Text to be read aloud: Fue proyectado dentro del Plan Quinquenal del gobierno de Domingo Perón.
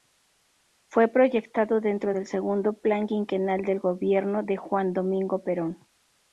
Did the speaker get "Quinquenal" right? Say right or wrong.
right